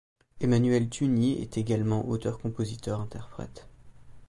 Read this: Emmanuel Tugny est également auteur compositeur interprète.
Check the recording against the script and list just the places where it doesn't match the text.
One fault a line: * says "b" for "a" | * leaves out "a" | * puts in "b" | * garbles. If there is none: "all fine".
all fine